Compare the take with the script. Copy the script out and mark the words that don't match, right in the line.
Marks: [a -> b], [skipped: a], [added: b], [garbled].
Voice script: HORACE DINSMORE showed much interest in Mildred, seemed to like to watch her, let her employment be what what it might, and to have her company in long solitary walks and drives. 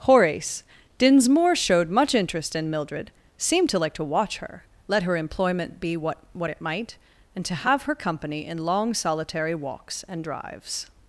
HORACE DINSMORE showed much interest in Mildred, seemed to like to watch her, let her employment be what what it might, and to have her company in long solitary walks and drives.